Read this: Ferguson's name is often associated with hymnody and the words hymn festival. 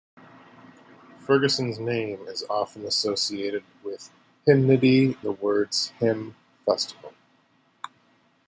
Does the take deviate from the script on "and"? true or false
true